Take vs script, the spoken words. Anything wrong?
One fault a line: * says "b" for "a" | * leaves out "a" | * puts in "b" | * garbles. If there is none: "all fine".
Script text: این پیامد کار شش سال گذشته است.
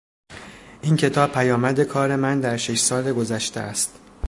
* puts in "کتاب"
* puts in "من در"